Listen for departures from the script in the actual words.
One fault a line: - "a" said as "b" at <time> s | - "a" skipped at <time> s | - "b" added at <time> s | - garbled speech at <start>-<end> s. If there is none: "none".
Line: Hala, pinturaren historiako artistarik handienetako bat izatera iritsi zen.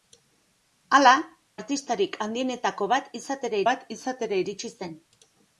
- "pinturaren historiako artistarik handienetako" said as "artistarik handienetako bat izatera" at 1.5 s